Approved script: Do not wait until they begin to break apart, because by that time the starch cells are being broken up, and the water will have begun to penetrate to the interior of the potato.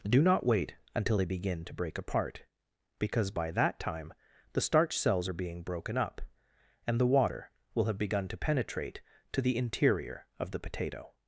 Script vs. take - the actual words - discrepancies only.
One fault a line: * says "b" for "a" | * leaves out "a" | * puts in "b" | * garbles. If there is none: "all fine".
all fine